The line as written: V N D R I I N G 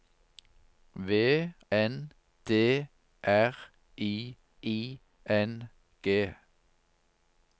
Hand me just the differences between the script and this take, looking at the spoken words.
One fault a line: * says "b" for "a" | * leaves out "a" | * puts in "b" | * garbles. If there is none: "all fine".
all fine